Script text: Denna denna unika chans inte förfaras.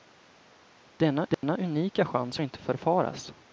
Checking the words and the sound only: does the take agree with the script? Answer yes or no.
no